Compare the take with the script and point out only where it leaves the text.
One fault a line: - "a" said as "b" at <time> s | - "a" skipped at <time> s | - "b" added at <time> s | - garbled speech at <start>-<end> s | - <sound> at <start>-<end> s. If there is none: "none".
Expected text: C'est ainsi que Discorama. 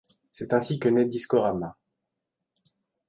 - "naît" added at 0.9 s